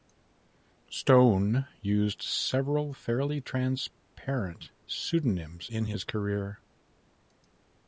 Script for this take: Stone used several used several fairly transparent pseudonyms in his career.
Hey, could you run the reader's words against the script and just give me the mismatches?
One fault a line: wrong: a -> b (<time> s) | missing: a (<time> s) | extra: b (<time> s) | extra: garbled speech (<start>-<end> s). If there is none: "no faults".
missing: used several (2.9 s)